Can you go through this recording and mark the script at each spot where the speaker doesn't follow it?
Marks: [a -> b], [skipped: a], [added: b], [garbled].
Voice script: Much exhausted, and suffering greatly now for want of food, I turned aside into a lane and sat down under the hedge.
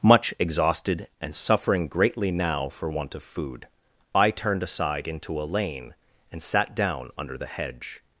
Much exhausted, and suffering greatly now for want of food, I turned aside into a lane and sat down under the hedge.